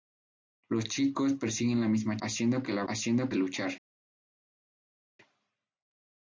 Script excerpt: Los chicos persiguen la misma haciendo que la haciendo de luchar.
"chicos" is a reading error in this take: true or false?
false